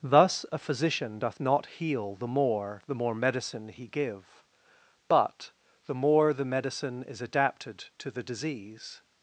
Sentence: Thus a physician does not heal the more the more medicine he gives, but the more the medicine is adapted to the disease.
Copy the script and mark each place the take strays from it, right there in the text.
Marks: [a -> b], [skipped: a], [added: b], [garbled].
Thus a physician [does -> doth] not heal the more the more medicine he [gives, -> give] but the more the medicine is adapted to the disease.